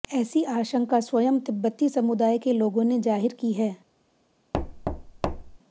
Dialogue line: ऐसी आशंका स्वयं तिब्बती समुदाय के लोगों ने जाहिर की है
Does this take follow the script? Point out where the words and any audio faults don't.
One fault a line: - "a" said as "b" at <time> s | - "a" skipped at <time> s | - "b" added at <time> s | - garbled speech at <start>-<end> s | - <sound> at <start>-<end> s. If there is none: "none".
- thud at 4.5-5.6 s